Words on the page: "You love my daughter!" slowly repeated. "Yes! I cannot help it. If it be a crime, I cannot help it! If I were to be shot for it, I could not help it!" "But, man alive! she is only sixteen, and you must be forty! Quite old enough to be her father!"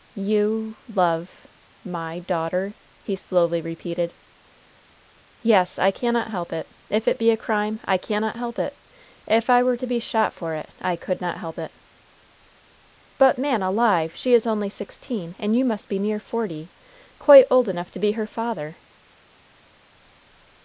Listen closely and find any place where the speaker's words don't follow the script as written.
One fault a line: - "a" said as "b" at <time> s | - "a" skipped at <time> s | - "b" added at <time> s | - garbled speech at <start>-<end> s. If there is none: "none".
- "he" added at 3.0 s
- "near" added at 16.0 s